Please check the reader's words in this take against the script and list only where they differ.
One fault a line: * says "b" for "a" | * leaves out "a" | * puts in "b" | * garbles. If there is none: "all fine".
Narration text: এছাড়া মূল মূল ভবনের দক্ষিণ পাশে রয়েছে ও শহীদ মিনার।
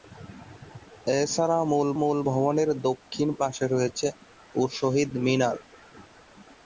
all fine